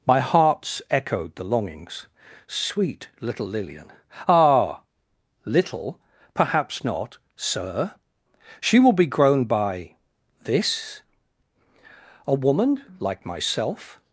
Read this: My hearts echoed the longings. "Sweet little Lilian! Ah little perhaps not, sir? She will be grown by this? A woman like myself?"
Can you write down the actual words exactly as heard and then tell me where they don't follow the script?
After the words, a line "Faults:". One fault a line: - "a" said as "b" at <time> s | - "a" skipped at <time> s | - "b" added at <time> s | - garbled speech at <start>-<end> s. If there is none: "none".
My hearts echoed the longings. "Sweet little Lilian! Ah little perhaps not, sir? She will be grown by this? A woman like myself?"
Faults:
none